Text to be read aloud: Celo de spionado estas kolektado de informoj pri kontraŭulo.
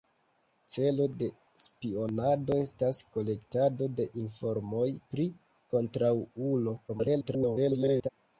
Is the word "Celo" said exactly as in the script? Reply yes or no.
yes